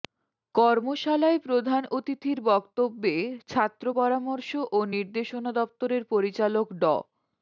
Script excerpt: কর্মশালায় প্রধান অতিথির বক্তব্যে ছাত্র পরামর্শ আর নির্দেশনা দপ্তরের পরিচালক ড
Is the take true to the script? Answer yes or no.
no